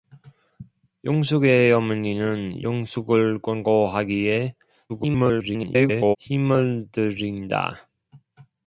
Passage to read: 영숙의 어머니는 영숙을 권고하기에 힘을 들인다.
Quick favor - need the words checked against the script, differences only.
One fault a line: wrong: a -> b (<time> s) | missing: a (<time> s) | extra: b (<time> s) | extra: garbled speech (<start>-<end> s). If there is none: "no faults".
extra: garbled speech (4.9-6.2 s)